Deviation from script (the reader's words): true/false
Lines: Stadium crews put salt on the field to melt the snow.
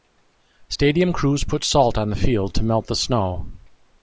false